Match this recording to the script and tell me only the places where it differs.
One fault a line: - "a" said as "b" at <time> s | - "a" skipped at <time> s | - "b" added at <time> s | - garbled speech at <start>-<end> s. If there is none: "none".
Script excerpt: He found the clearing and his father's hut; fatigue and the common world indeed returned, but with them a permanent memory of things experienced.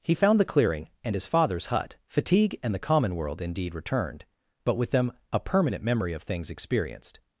none